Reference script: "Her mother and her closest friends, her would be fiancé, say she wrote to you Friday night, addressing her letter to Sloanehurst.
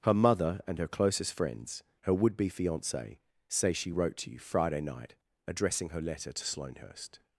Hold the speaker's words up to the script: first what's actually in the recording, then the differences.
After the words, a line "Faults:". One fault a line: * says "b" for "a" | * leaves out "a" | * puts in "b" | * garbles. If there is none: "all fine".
"Her mother and her closest friends, her would be fiancé, say she wrote to you Friday night, addressing her letter to Sloanehurst.
Faults:
all fine